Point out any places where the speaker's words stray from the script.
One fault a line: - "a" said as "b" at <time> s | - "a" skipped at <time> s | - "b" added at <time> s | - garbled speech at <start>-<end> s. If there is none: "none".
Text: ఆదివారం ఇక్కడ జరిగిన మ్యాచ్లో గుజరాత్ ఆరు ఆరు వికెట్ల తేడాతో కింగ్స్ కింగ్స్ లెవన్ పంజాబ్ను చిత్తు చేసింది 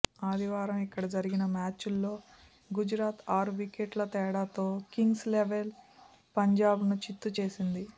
- "ఆరు" skipped at 3.5 s
- "కింగ్స్" skipped at 5.3 s